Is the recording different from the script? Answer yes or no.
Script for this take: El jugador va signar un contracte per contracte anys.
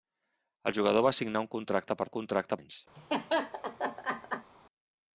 no